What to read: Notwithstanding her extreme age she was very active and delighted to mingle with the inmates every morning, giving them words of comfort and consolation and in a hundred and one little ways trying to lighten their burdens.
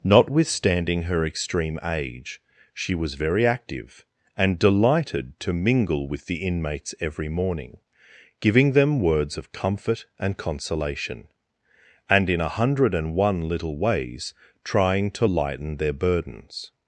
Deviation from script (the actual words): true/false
false